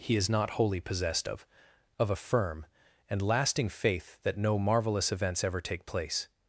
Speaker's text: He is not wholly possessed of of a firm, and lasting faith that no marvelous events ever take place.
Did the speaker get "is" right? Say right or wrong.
right